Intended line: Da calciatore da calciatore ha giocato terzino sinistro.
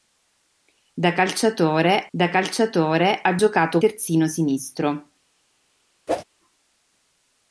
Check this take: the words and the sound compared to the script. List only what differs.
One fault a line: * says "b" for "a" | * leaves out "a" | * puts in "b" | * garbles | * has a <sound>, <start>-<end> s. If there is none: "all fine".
* has a whoosh, 6.1-6.2 s